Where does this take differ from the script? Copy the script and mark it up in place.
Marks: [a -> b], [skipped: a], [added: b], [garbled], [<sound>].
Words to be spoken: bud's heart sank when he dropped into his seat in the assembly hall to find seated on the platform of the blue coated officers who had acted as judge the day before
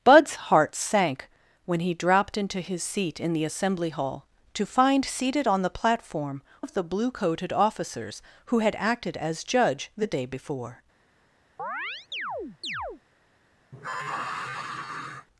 bud's heart sank when he dropped into his seat in the assembly hall to find seated on the platform of the blue coated officers who had acted as judge the day before [chirp] [sigh]